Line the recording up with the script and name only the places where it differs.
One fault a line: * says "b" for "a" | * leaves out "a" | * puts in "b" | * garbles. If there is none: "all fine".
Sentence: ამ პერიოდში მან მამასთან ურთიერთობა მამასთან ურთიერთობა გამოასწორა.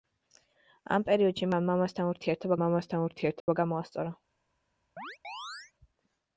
all fine